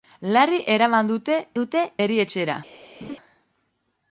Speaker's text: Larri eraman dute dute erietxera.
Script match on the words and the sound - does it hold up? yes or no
no